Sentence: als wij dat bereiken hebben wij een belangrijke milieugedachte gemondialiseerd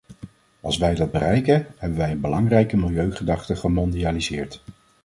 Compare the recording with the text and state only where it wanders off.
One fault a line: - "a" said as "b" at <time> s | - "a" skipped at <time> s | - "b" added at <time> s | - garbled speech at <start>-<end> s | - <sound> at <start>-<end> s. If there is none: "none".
none